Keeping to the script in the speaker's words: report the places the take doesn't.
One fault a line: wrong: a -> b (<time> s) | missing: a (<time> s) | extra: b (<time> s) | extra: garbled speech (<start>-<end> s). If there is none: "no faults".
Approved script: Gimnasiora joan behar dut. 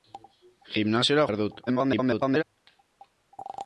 missing: joan (1.3 s)
extra: garbled speech (1.7-2.4 s)